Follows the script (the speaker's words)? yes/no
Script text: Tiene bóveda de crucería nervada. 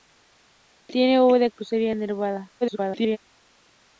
no